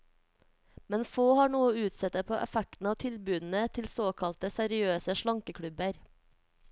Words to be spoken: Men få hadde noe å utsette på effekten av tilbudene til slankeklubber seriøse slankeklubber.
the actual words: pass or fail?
fail